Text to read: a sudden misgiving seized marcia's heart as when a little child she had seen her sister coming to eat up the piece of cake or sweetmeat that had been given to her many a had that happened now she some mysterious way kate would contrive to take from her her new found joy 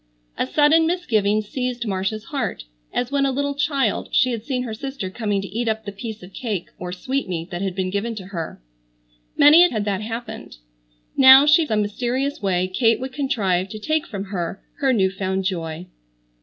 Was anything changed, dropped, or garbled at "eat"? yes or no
no